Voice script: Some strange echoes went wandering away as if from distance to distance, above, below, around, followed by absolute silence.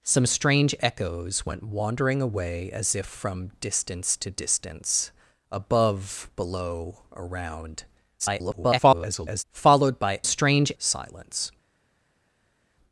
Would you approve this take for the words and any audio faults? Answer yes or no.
no